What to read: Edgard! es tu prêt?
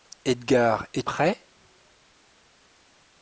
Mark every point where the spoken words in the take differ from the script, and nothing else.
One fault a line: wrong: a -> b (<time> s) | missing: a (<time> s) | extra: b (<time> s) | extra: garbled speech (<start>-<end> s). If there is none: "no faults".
missing: tu (1.0 s)